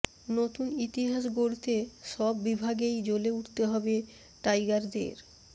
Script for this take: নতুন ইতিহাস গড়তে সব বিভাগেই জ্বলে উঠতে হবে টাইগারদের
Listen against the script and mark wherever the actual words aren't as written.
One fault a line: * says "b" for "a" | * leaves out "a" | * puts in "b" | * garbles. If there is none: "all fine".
all fine